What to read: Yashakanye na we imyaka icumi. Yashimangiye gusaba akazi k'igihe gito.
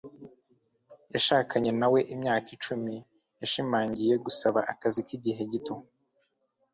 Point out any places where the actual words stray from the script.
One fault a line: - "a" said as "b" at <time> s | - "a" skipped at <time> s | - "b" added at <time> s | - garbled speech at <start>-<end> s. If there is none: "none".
none